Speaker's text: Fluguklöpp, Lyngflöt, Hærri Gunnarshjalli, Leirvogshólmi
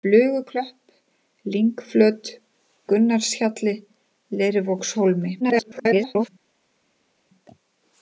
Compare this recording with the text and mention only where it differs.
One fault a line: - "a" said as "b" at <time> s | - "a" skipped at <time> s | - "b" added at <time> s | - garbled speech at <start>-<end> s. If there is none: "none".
- "Hærri" skipped at 2.3 s
- garbled speech at 5.4-6.3 s